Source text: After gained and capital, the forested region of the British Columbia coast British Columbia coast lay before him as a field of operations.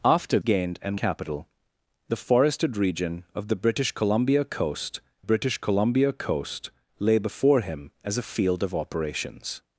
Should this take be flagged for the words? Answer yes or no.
no